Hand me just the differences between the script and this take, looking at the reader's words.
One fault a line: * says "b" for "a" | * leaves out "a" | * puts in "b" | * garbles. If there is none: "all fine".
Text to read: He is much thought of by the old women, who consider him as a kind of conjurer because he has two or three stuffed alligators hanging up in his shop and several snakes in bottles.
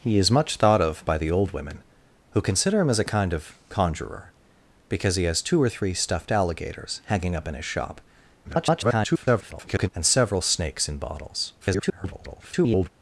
* garbles
* garbles